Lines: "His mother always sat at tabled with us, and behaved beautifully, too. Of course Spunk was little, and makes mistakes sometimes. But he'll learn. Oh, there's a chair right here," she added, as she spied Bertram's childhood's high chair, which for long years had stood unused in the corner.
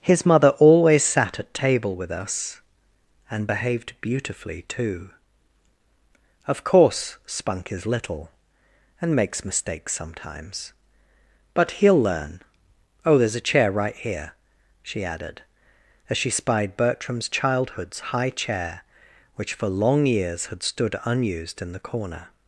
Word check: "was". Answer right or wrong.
wrong